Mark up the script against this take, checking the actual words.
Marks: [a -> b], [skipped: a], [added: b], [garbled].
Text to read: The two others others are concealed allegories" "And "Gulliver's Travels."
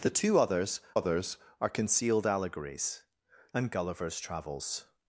The two others others are concealed allegories" "And "Gulliver's Travels."